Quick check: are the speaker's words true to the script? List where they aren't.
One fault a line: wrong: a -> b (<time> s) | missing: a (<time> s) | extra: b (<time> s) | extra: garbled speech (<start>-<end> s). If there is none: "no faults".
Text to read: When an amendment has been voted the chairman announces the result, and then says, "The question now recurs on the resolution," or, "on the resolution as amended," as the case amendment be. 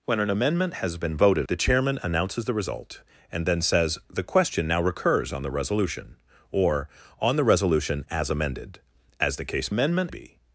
no faults